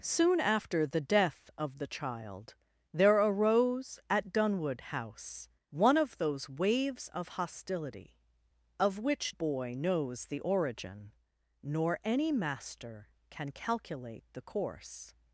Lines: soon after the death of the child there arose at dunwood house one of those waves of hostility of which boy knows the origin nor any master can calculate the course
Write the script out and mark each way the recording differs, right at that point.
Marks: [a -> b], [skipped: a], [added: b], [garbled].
soon after the death of the child there arose at dunwood house one of those waves of hostility of which boy knows the origin nor any master can calculate the course